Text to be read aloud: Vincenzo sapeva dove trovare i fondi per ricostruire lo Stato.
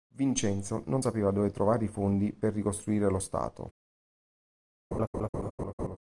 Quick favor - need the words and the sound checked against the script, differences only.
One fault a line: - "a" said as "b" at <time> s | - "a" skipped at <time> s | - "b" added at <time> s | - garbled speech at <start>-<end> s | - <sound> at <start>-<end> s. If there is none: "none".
- "non" added at 0.9 s
- laugh at 4.9-6.0 s